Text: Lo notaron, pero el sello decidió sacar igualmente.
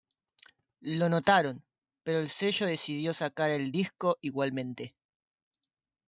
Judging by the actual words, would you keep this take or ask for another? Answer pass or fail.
fail